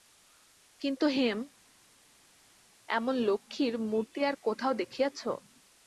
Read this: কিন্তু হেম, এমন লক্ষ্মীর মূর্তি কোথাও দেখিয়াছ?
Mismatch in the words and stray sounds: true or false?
true